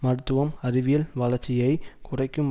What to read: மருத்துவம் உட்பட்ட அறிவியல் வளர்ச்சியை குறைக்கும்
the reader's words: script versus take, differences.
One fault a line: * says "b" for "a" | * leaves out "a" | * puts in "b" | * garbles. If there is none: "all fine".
* leaves out "உட்பட்ட"